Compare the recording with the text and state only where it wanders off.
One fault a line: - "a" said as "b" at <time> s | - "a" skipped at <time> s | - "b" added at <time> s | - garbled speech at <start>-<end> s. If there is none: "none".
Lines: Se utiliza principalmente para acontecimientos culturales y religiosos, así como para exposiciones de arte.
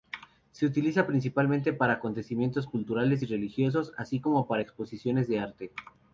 none